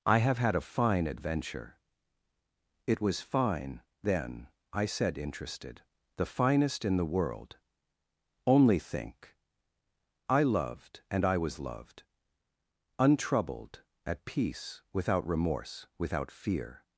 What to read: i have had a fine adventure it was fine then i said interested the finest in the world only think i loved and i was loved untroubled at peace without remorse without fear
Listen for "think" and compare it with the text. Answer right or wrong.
right